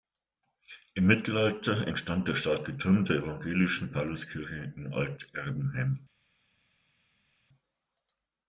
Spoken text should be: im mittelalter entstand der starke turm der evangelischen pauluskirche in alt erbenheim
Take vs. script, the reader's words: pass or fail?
pass